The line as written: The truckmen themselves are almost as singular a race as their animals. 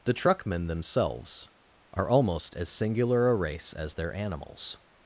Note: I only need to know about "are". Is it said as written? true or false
true